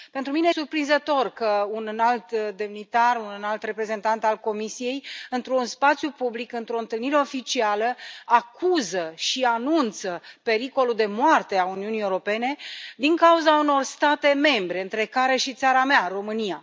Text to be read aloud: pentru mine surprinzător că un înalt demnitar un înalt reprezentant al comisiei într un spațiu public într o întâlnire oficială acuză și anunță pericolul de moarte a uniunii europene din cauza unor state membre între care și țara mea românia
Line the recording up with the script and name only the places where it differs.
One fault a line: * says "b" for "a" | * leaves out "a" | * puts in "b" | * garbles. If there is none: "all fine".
all fine